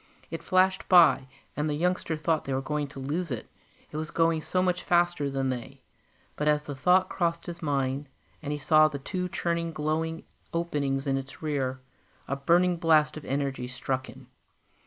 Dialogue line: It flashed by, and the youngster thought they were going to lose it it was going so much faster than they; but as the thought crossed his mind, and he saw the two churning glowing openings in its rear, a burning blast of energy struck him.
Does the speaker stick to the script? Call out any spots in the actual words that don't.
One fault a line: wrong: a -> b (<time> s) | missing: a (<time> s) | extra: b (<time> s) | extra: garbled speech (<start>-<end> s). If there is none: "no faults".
no faults